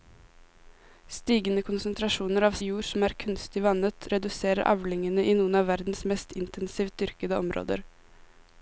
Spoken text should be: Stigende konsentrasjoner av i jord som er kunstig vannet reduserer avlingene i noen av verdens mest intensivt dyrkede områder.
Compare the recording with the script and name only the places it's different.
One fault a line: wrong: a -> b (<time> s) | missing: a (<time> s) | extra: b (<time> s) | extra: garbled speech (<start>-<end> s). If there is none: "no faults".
no faults